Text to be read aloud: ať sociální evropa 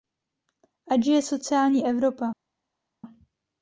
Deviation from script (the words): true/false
true